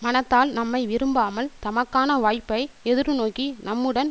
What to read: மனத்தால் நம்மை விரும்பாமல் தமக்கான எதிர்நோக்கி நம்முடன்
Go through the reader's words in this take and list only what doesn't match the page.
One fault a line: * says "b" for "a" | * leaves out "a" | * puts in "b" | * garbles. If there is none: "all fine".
* puts in "வாய்ப்பை"